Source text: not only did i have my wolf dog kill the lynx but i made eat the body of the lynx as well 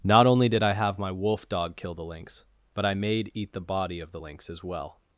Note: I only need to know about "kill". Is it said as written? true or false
true